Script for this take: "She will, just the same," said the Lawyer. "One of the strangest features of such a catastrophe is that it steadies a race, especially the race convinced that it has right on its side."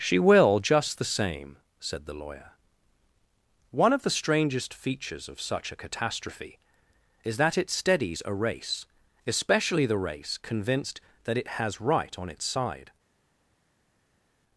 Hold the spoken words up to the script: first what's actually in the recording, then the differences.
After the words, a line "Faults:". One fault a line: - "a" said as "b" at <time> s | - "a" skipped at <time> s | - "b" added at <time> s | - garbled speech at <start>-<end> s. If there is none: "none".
"She will, just the same," said the Lawyer. "One of the strangest features of such a catastrophe is that it steadies a race, especially the race convinced that it has right on its side."
Faults:
none